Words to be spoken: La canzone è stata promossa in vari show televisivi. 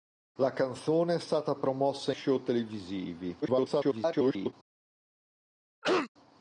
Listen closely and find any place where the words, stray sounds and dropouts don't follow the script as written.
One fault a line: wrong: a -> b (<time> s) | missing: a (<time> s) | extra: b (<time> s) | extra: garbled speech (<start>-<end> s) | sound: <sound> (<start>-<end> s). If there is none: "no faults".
missing: in vari (2.1 s)
extra: garbled speech (3.4-4.5 s)
sound: cough (5.8-6.1 s)